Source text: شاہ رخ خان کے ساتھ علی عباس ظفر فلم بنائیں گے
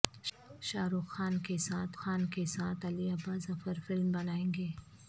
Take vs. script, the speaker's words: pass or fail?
fail